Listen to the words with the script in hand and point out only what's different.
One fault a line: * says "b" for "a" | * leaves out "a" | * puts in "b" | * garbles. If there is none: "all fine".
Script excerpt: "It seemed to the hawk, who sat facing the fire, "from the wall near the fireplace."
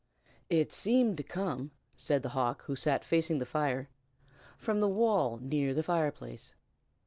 * puts in "come said"